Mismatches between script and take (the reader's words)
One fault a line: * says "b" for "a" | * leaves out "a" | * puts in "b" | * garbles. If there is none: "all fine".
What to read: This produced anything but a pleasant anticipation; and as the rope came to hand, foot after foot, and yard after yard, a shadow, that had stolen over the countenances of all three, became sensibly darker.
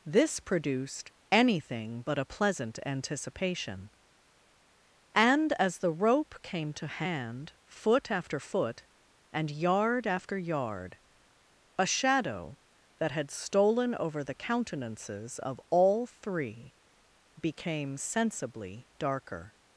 all fine